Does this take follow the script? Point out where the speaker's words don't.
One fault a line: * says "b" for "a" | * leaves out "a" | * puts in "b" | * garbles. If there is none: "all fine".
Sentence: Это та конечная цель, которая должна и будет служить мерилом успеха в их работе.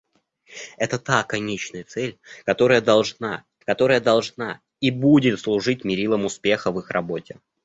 * puts in "которая должна"